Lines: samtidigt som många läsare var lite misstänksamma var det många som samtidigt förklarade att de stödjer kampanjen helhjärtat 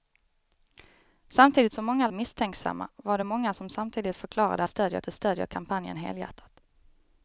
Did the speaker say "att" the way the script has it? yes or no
no